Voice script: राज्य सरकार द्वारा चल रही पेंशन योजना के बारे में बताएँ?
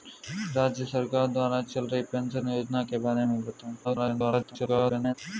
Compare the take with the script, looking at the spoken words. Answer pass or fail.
fail